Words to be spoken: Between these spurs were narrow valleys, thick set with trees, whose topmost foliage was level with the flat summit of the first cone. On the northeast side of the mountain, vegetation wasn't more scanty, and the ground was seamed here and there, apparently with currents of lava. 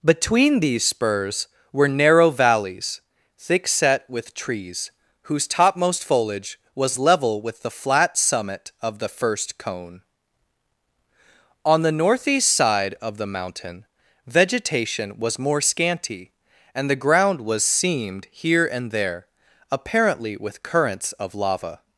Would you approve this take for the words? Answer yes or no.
no